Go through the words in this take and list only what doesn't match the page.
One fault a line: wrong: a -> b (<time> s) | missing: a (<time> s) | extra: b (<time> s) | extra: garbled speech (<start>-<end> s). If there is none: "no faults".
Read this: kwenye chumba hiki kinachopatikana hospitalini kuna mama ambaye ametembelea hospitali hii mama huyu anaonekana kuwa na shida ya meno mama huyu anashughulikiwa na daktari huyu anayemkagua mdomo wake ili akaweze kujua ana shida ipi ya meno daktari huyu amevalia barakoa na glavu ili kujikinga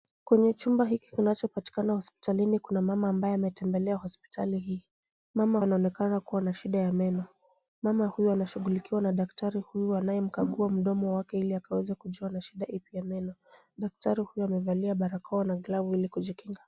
missing: huyu (5.6 s)